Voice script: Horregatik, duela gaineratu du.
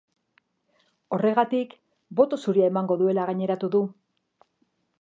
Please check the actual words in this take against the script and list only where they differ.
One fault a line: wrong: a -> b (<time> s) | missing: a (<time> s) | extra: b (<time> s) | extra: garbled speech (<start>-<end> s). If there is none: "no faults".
extra: boto zuria emango (2.2 s)